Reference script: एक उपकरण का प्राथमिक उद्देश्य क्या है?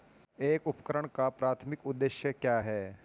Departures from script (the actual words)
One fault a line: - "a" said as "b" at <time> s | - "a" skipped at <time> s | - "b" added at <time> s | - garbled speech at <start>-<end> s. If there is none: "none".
none